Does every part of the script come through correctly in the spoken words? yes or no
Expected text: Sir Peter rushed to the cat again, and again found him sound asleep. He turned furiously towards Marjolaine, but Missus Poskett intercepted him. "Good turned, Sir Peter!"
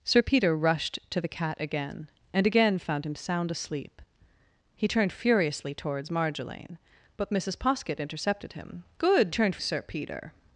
yes